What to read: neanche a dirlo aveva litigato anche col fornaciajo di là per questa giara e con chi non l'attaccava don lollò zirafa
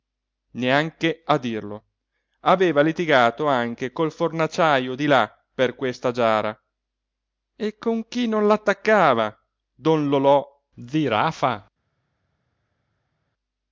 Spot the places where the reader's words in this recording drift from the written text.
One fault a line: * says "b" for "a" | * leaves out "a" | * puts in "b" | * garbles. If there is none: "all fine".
all fine